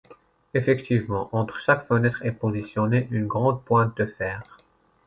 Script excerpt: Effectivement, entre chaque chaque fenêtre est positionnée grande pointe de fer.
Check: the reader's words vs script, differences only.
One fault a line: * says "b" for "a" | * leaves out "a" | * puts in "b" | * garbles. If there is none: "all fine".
* leaves out "chaque"
* puts in "une"